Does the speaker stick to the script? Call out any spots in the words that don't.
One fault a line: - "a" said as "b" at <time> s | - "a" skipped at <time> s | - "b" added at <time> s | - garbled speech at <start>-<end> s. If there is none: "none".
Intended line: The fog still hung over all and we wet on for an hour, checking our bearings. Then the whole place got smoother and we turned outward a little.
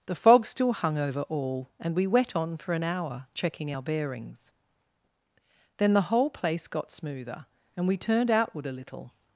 none